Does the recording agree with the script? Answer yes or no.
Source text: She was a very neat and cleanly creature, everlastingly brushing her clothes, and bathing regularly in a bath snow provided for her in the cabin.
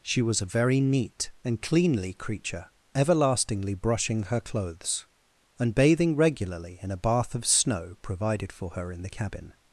no